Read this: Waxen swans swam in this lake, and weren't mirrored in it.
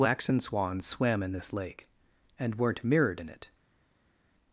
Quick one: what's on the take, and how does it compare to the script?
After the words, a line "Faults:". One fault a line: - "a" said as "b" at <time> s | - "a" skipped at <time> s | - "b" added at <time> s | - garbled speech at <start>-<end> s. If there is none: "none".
Waxen swans swam in this lake, and weren't mirrored in it.
Faults:
none